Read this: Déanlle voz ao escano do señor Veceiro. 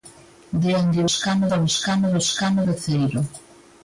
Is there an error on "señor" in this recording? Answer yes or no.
yes